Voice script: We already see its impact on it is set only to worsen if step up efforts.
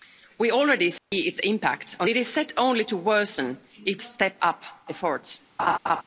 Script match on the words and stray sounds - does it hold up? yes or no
no